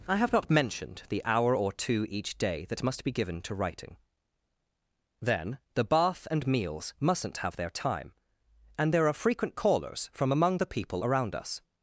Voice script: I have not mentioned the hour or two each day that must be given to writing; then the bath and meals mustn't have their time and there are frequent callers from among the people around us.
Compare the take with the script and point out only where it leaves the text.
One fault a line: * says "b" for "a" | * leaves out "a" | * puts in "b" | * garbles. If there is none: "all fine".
all fine